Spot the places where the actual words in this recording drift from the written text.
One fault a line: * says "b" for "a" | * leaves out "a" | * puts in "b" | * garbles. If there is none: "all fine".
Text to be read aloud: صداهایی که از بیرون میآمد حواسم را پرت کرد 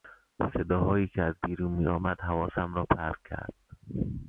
all fine